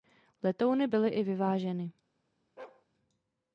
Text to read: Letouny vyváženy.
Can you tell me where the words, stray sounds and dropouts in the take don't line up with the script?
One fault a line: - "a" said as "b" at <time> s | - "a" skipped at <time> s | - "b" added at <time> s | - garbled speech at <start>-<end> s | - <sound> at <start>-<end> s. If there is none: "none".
- "byly i" added at 0.8 s
- bark at 2.6-2.9 s